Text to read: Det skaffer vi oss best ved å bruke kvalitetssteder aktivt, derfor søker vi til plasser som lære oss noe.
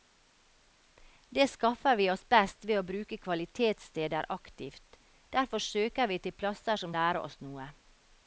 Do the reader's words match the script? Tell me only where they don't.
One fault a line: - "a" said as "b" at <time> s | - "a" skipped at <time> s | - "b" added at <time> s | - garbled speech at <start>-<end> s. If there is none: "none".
none